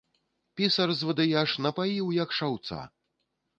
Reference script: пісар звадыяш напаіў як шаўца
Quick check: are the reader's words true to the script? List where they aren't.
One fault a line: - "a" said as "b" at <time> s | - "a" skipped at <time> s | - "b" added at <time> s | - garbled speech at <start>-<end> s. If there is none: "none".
none